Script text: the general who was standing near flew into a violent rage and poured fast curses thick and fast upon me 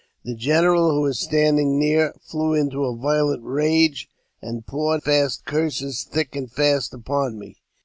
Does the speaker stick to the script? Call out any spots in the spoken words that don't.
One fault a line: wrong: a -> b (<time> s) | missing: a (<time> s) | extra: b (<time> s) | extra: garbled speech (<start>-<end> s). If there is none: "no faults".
no faults